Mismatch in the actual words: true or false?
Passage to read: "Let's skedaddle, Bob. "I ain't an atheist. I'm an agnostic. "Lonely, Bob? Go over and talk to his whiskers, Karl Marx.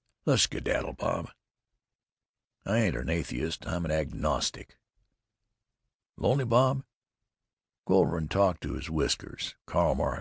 false